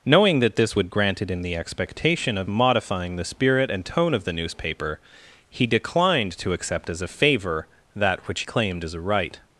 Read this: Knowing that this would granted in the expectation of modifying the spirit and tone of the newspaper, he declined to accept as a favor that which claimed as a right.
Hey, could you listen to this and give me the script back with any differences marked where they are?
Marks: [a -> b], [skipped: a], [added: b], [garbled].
Knowing that this would granted in the expectation of modifying the spirit and tone of the newspaper, he declined to accept as a favor that which claimed as a right.